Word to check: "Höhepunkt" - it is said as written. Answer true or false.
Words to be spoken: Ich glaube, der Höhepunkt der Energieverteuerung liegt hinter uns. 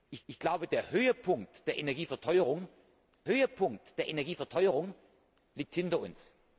true